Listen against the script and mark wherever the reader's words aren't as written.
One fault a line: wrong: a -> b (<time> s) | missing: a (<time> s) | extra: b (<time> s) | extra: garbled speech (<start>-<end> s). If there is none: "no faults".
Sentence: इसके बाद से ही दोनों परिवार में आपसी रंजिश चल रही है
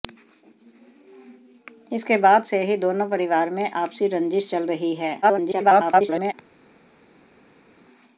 extra: garbled speech (5.2-6.3 s)